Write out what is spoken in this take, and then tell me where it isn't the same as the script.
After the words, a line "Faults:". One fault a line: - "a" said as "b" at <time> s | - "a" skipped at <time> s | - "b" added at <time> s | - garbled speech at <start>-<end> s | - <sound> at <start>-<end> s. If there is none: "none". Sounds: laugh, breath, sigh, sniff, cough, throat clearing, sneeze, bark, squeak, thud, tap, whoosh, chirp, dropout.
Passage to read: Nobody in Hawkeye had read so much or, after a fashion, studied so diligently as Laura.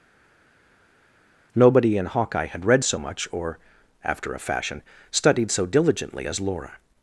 Nobody in Hawkeye had read so much or, after a fashion, studied so diligently as Laura.
Faults:
none